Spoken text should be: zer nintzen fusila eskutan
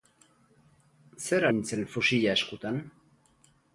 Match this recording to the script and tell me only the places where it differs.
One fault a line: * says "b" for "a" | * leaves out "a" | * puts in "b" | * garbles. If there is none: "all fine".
all fine